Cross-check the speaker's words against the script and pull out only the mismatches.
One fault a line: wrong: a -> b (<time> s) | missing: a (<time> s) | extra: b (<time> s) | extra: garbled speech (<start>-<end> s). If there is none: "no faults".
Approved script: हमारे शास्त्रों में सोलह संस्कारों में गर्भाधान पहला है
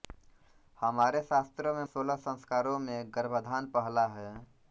no faults